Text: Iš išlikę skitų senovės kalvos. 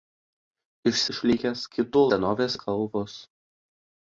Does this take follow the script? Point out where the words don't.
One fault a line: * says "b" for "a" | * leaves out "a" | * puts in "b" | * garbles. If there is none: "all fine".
all fine